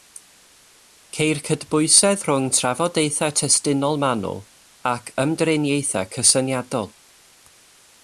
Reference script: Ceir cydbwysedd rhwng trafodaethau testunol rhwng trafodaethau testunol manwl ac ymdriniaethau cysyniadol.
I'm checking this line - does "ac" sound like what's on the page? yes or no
yes